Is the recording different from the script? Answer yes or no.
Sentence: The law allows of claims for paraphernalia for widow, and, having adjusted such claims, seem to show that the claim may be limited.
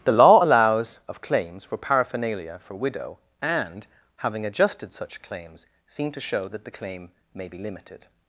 no